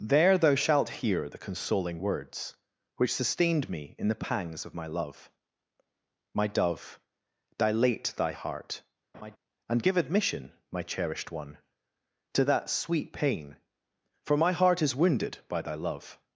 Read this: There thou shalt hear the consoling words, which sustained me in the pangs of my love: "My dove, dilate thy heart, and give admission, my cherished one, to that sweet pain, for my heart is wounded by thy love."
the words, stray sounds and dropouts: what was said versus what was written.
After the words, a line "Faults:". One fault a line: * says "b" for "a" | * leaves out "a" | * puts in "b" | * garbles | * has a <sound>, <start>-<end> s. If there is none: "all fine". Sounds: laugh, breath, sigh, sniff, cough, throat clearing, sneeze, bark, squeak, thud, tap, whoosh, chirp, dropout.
There thou shalt hear the consoling words, which sustained me in the pangs of my love: "My dove, dilate thy heart, and give admission, my cherished one, to that sweet pain, for my heart is wounded by thy love."
Faults:
* has a laugh, 9.1-9.4 s